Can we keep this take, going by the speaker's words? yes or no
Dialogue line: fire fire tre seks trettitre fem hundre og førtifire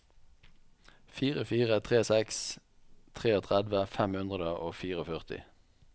yes